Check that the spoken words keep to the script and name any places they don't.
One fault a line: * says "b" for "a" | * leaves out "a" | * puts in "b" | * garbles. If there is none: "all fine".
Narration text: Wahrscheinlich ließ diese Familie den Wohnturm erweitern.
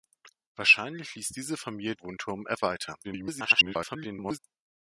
* leaves out "den"
* garbles